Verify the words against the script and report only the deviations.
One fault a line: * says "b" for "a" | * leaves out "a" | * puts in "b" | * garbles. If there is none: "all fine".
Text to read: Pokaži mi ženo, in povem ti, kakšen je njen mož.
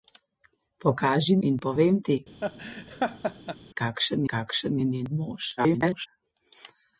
* leaves out "mi ženo"
* puts in "kakšen"
* garbles